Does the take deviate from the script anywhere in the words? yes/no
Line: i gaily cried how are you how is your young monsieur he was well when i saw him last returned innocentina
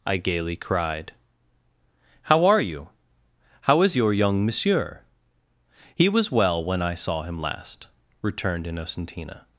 no